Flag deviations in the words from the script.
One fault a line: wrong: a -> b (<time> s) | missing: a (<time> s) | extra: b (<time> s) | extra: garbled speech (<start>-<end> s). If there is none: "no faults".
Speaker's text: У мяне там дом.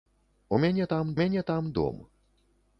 extra: мяне там (1.1 s)